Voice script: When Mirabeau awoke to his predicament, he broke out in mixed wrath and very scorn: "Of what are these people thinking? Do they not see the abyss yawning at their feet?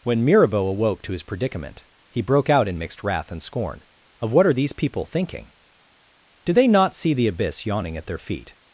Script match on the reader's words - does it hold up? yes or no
no